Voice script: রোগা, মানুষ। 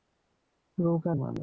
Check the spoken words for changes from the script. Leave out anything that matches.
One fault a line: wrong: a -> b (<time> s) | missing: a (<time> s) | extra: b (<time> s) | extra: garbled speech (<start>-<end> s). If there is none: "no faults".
no faults